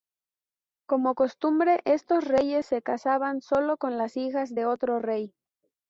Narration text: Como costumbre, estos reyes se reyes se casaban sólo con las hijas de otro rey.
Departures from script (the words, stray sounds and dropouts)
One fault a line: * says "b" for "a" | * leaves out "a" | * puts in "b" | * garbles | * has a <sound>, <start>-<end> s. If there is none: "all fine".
* leaves out "reyes se"